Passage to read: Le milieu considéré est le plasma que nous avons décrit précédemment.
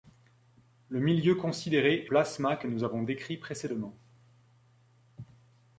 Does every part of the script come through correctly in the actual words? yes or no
no